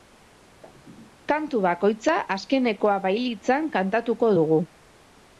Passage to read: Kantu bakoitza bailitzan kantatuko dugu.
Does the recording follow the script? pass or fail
fail